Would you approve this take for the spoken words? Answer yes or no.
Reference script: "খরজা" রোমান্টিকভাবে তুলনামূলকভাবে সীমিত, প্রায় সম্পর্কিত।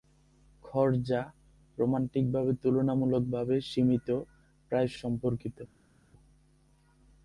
yes